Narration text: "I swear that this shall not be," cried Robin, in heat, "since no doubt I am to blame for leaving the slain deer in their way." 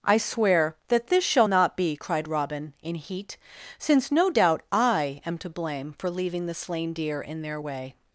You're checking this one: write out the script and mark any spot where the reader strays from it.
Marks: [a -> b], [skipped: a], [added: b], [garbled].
"I swear that this shall not be," cried Robin, in heat, "since no doubt I am to blame for leaving the slain deer in their way."